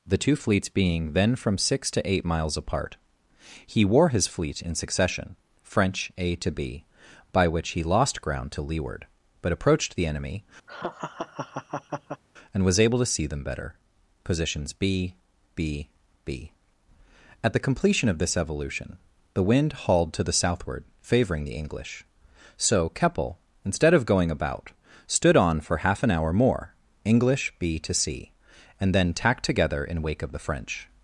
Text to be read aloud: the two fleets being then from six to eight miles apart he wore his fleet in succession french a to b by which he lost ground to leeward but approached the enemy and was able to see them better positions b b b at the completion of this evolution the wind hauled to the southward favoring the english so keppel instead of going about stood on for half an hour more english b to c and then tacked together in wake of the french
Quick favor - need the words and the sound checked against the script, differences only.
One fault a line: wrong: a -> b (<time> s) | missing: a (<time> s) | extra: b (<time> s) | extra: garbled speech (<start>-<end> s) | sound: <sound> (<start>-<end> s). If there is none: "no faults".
sound: laugh (10.7-12.2 s)